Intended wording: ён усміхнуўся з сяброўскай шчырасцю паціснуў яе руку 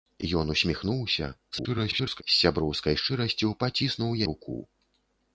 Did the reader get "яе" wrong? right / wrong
wrong